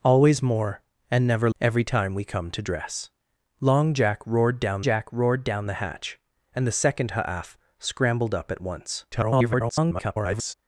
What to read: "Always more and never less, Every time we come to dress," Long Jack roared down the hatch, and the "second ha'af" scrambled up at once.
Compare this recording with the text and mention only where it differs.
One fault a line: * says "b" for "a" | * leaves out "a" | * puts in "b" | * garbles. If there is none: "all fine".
* leaves out "less"
* puts in "Jack roared down"
* garbles